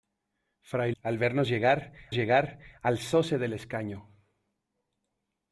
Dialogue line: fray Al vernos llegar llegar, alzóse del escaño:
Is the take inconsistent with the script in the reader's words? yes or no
no